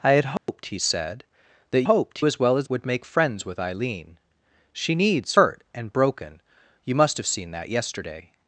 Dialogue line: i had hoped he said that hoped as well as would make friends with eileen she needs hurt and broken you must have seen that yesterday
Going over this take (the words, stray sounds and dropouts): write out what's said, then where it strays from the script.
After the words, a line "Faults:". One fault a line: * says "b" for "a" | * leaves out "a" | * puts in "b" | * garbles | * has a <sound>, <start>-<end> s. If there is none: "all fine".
i had hoped he said that hoped as well as would make friends with eileen she needs hurt and broken you must have seen that yesterday
Faults:
* has a dropout, 0.4-0.5 s